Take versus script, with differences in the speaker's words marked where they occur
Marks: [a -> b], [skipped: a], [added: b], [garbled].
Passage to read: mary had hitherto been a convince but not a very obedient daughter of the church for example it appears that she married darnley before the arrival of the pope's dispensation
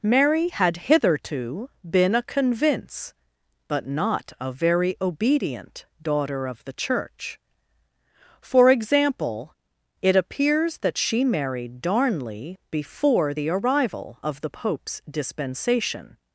mary had hitherto been a convince but not a very obedient daughter of the church for example it appears that she married darnley before the arrival of the pope's dispensation